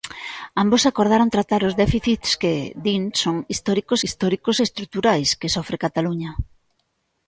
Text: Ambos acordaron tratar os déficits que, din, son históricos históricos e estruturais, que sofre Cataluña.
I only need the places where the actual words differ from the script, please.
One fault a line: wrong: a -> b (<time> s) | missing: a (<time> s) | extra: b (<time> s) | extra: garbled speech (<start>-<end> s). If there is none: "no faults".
no faults